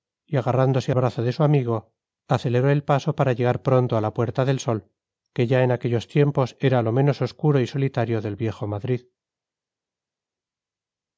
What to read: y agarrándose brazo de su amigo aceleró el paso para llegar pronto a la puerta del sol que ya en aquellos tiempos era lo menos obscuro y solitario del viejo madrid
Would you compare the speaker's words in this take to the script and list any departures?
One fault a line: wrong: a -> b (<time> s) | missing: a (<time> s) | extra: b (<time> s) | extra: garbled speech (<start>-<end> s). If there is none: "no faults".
no faults